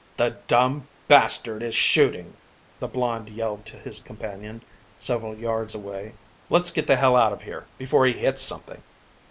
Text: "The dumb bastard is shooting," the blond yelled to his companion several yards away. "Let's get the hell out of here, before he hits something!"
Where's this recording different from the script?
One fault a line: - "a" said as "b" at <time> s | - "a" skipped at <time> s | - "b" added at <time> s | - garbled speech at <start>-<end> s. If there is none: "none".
none